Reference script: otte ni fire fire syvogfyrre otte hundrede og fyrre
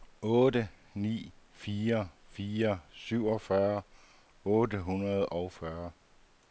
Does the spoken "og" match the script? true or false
true